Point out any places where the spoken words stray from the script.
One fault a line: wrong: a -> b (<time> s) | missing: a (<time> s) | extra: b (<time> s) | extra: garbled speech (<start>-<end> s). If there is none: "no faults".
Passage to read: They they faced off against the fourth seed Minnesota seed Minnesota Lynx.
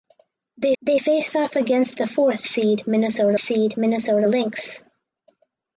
no faults